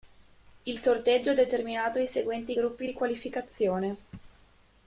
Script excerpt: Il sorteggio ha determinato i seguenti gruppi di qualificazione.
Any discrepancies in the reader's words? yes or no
no